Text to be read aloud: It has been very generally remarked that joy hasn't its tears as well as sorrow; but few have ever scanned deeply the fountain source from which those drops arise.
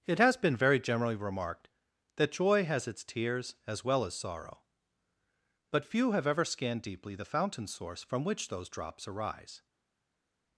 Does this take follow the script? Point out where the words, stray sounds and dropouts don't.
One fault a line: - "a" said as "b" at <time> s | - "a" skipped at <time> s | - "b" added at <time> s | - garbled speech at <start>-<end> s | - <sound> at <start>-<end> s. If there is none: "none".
- "hasn't" said as "has" at 2.6 s